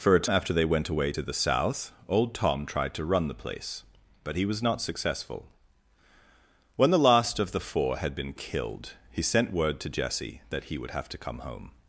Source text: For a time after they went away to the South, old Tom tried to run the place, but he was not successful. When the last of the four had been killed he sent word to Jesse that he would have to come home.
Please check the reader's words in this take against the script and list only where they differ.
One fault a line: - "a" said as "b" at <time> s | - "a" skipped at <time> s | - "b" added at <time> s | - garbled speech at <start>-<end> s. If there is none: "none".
- "time" skipped at 0.3 s